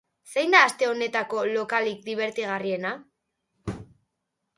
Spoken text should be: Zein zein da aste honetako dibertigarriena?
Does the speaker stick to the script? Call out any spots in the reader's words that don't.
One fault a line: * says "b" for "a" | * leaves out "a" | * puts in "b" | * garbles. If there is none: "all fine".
* leaves out "zein"
* puts in "lokalik"